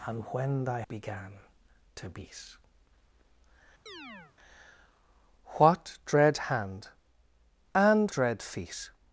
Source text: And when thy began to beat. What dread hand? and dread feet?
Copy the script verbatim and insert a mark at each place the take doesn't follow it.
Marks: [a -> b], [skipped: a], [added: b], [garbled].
And when thy began to beat. What dread hand? and dread feet?